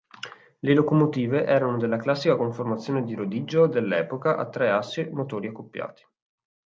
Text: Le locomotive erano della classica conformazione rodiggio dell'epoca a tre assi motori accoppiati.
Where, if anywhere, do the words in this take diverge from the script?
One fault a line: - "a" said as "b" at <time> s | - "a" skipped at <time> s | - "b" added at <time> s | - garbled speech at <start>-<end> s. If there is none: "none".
- "di" added at 3.0 s